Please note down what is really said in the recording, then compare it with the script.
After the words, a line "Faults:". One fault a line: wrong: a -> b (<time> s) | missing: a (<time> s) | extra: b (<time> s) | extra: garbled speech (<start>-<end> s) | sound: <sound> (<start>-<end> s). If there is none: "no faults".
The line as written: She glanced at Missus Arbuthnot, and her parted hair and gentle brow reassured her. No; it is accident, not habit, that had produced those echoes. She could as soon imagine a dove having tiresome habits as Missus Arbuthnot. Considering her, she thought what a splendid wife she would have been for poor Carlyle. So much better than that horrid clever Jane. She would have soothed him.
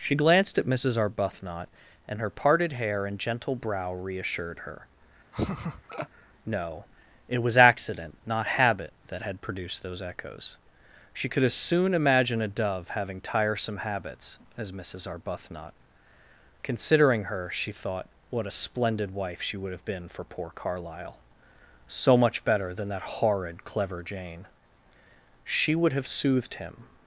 She glanced at Missus Arbuthnot, and her parted hair and gentle brow reassured her. No; it was accident, not habit, that had produced those echoes. She could as soon imagine a dove having tiresome habits as Missus Arbuthnot. Considering her, she thought what a splendid wife she would have been for poor Carlyle. So much better than that horrid clever Jane. She would have soothed him.
Faults:
sound: laugh (5.3-6.1 s)
wrong: is -> was (7.4 s)